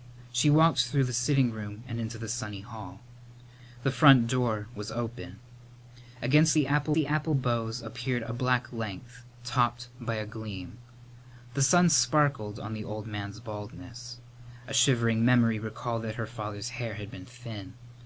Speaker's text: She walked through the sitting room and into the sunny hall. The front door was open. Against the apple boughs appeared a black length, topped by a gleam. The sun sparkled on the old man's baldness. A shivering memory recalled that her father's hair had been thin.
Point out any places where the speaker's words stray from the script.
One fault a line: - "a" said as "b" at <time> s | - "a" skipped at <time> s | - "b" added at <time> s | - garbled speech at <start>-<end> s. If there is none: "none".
- "the apple" added at 6.9 s